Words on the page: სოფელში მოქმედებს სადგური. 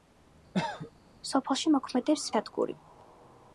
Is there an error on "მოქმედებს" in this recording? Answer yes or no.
no